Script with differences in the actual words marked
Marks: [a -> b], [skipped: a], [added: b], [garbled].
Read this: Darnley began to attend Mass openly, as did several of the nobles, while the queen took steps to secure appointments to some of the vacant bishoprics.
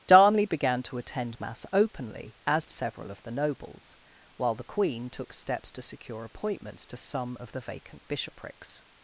Darnley began to attend Mass openly, as [skipped: did] several of the nobles, while the queen took steps to secure appointments to some of the vacant bishoprics.